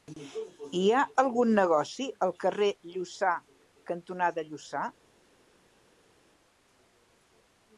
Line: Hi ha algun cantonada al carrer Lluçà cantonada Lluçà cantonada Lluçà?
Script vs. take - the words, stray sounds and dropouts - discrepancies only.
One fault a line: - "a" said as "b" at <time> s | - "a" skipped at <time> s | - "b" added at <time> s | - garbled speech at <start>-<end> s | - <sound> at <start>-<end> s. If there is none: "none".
- "cantonada" said as "negoci" at 1.6 s
- "cantonada Lluçà" skipped at 4.9 s